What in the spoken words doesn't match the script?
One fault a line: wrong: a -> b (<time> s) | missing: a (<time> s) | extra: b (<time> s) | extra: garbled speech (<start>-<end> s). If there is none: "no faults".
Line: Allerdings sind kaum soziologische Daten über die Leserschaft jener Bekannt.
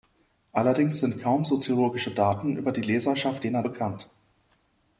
no faults